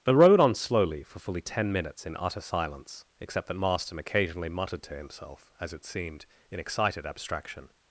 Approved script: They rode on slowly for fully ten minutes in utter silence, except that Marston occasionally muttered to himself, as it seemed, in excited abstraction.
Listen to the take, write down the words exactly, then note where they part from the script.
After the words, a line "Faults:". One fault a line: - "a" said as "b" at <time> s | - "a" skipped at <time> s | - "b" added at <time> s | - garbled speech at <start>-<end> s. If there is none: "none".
They rode on slowly for fully ten minutes in utter silence, except that Marston occasionally muttered to himself, as it seemed, in excited abstraction.
Faults:
none